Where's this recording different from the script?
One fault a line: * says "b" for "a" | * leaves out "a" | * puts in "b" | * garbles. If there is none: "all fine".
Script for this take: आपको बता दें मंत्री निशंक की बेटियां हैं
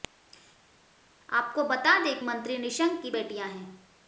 all fine